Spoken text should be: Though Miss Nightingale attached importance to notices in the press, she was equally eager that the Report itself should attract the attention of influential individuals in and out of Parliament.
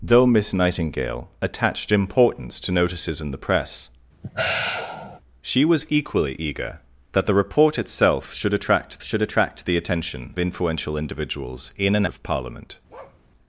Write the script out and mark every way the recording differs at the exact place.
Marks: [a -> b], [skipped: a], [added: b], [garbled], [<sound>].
Though Miss Nightingale attached importance to notices in the press, [sigh] she was equally eager that the Report itself should attract [added: should attract] the attention [skipped: of] influential individuals in and [skipped: out] of Parliament. [bark]